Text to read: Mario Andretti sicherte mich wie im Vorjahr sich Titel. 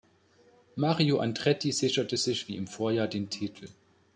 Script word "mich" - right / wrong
wrong